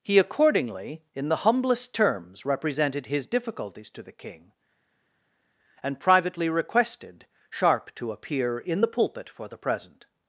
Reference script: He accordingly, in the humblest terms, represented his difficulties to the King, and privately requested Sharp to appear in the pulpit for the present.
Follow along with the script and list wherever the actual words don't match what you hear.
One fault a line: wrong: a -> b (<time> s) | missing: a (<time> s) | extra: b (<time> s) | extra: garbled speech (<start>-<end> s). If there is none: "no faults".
no faults